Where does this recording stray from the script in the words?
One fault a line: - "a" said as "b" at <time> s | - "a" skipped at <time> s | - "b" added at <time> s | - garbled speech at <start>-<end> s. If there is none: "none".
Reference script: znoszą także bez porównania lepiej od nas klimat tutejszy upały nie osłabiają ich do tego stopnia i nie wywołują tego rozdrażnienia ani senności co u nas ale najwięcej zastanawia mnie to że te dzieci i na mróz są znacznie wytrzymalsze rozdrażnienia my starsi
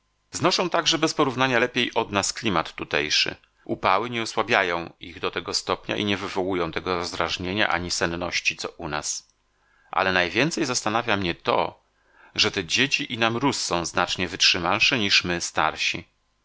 - "rozdrażnienia" said as "niż" at 15.0 s